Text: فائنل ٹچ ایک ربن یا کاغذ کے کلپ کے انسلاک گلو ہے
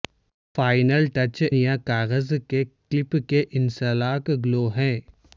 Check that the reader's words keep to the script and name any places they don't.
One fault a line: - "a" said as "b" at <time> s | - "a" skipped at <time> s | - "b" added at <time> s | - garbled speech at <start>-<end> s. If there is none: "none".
- "ایک ربن" skipped at 1.4 s